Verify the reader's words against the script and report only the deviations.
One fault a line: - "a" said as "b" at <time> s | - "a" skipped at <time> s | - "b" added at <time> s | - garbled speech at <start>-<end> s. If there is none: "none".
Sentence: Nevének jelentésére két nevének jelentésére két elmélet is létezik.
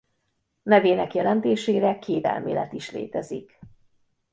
- "nevének jelentésére két" skipped at 2.3 s